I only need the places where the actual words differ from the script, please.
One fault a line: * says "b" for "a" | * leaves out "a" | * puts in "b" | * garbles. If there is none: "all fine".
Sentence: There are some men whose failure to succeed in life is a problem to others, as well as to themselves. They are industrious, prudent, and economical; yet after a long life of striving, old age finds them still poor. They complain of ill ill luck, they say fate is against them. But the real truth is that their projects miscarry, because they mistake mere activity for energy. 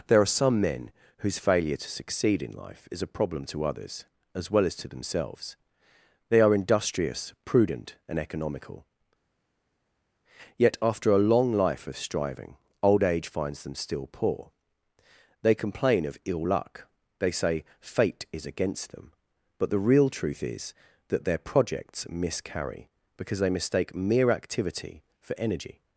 * leaves out "ill"